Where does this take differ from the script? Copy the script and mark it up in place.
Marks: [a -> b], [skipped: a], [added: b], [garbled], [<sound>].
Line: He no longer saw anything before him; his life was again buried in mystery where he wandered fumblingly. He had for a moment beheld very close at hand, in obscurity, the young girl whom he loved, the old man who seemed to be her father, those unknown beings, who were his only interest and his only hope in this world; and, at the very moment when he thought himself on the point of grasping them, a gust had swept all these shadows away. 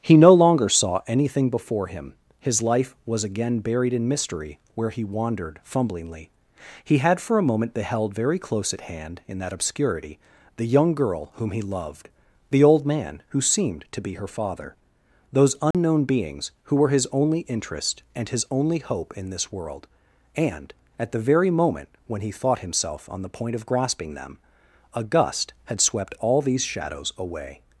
He no longer saw anything before him; his life was again buried in mystery where he wandered fumblingly. He had for a moment beheld very close at hand, in [added: that] obscurity, the young girl whom he loved, the old man who seemed to be her father, those unknown [dropout] beings, who were his only interest and his only hope in this world; and, at the very moment when he thought himself on the point of grasping them, a gust had swept all these shadows away.